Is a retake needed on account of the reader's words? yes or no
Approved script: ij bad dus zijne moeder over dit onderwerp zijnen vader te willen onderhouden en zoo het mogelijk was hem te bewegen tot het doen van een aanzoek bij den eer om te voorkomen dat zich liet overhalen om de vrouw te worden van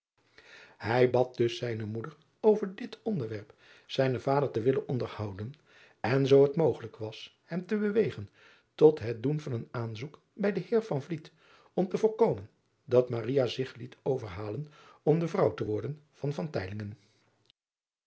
no